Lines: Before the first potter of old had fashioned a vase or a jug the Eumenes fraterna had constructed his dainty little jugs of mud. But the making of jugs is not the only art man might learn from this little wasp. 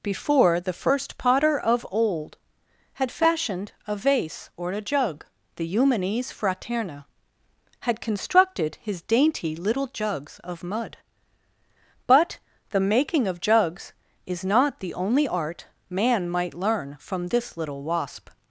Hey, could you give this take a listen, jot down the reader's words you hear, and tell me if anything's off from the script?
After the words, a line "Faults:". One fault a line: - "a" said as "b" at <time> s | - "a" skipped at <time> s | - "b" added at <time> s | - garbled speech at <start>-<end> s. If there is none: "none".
Before the first potter of old had fashioned a vase or a jug the Eumenes fraterna had constructed his dainty little jugs of mud. But the making of jugs is not the only art man might learn from this little wasp.
Faults:
none